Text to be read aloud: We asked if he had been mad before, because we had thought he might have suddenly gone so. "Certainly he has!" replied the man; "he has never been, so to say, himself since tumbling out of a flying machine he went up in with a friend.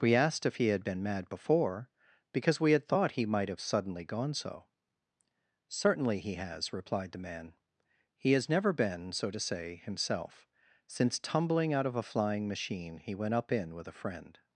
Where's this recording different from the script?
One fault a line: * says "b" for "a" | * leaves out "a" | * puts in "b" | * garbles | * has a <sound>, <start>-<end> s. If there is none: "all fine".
all fine